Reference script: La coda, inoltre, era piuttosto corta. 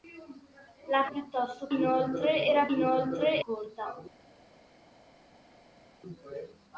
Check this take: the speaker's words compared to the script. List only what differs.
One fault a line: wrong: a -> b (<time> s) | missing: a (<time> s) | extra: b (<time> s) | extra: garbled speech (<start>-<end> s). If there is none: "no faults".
wrong: coda -> piuttosto (1.1 s)
wrong: piuttosto -> inoltre (2.7 s)